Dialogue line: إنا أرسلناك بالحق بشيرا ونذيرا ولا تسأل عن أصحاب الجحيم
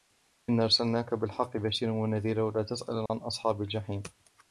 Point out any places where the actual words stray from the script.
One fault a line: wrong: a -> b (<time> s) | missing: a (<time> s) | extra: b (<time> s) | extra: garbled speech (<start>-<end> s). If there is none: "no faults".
no faults